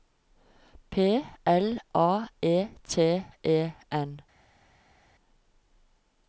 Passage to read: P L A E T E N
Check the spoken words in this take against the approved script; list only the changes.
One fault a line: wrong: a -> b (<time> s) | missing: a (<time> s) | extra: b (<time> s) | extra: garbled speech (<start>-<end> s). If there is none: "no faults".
no faults